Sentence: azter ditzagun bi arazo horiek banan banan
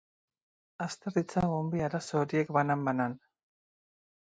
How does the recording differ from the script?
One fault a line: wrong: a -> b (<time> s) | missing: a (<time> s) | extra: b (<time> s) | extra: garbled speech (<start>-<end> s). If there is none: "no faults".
no faults